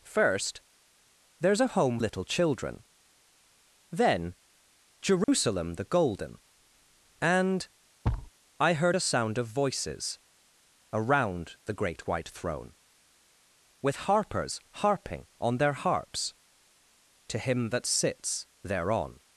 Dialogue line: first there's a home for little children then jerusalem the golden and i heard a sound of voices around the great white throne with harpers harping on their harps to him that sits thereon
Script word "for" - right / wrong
wrong